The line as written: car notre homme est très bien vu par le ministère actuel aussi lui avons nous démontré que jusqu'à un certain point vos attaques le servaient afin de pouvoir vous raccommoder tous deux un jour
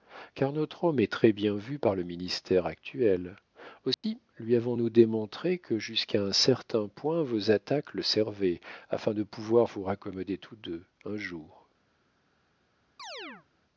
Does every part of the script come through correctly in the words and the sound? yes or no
no